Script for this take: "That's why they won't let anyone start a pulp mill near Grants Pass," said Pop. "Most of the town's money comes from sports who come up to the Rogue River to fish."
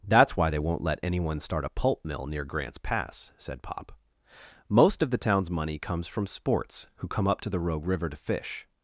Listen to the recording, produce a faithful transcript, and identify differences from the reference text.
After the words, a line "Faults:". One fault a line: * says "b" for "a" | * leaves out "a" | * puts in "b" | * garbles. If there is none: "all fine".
"That's why they won't let anyone start a pulp mill near Grants Pass," said Pop. "Most of the town's money comes from sports who come up to the Rogue River to fish."
Faults:
all fine